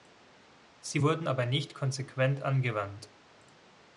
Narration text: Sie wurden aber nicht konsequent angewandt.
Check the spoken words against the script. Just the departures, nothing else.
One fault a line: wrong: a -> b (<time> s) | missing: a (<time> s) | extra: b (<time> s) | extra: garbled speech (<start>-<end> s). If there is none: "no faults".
no faults